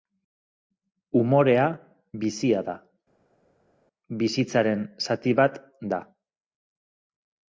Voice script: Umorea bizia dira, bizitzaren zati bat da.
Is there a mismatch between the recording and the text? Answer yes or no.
yes